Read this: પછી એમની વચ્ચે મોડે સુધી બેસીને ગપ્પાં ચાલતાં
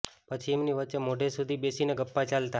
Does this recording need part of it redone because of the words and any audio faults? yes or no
no